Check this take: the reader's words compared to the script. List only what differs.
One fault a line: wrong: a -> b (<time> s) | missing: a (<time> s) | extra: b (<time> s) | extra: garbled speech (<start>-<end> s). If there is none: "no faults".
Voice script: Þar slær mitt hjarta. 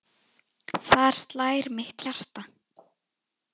no faults